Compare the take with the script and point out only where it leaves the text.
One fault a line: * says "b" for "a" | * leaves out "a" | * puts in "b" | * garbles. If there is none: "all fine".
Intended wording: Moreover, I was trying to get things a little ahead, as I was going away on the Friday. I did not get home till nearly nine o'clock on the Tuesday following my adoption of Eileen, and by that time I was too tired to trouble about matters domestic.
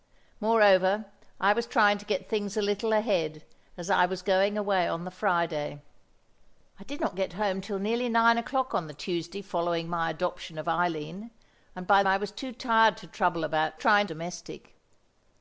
* leaves out "that time"
* says "trying" for "matters"